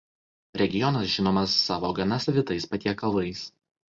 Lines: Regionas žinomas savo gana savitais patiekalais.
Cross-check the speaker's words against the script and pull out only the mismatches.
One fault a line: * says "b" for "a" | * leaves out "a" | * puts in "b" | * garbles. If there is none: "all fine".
all fine